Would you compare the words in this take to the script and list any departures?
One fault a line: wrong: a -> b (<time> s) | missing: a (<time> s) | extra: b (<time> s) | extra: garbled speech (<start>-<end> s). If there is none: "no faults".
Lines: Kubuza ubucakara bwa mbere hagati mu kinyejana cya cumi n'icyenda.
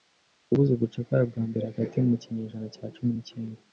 no faults